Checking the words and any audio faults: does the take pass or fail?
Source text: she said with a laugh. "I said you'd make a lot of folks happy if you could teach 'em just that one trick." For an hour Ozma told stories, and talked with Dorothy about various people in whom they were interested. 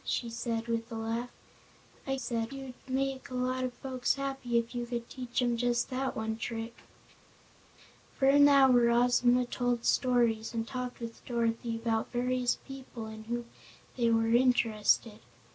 pass